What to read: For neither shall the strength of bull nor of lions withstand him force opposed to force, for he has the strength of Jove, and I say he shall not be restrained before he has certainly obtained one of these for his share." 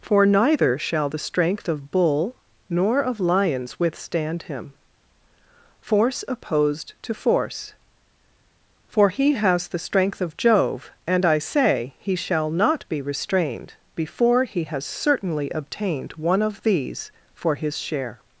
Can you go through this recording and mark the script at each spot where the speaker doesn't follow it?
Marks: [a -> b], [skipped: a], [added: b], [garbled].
For neither shall the strength of bull nor of lions withstand him force opposed to force, for he has the strength of Jove, and I say he shall not be restrained before he has certainly obtained one of these for his share."